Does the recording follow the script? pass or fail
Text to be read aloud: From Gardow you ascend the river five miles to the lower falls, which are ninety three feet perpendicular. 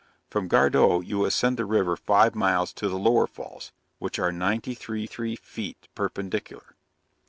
fail